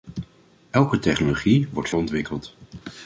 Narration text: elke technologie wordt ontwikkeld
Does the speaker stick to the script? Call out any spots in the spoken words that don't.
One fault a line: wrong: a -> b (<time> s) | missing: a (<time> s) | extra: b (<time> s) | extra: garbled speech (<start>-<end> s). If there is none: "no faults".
no faults